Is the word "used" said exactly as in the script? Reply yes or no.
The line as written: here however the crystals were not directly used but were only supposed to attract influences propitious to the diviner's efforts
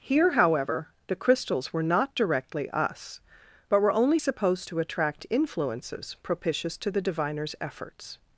no